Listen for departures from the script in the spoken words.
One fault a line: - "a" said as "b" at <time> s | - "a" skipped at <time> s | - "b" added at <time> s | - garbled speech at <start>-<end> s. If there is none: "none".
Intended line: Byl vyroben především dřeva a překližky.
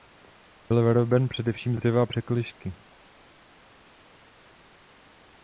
none